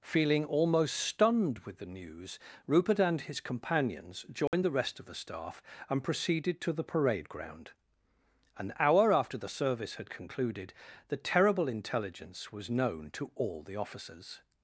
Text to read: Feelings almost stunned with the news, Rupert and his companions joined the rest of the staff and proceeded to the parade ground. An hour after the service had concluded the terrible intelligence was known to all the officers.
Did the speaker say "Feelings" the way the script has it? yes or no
no